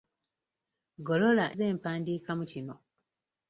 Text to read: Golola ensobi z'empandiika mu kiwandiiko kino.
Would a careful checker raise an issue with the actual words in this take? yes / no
yes